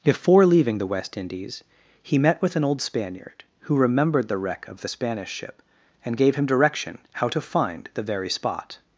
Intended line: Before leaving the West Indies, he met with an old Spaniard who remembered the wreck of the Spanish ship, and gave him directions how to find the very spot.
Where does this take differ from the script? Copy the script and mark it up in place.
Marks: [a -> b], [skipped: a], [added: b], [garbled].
Before leaving the West Indies, he met with an old Spaniard who remembered the wreck of the Spanish ship, and gave him [directions -> direction] how to find the very spot.